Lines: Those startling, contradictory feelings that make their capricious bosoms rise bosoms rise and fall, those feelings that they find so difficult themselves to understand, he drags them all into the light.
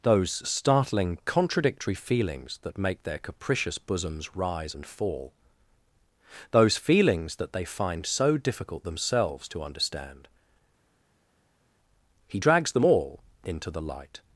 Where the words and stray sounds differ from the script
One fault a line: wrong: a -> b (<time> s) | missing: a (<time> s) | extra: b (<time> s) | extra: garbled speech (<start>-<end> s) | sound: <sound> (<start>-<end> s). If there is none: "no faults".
missing: bosoms rise (4.8 s)